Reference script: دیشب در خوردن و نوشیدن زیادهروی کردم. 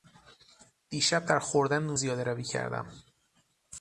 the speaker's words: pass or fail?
fail